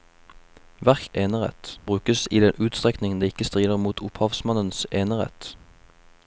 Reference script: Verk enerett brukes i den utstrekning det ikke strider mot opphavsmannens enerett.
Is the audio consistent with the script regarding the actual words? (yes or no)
yes